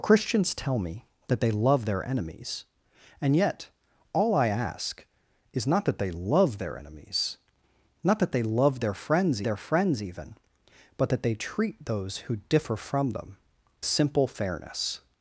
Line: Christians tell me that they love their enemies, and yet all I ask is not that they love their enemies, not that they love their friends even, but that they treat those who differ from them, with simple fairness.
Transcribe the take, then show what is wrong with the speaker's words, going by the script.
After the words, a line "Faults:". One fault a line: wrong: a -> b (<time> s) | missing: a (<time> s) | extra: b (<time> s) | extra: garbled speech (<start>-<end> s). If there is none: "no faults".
Christians tell me that they love their enemies, and yet all I ask is not that they love their enemies, not that they love their friends their friends even, but that they treat those who differ from them, simple fairness.
Faults:
extra: their friends (9.4 s)
missing: with (13.4 s)